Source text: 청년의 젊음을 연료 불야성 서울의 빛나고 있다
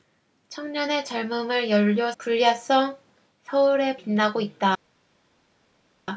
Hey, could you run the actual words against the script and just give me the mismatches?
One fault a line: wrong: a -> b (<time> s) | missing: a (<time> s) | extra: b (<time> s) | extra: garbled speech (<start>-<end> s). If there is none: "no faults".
no faults